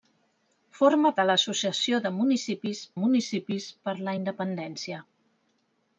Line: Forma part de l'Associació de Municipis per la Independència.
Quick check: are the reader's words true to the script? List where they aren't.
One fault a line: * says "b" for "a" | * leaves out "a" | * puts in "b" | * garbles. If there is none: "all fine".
* leaves out "part"
* puts in "Municipis"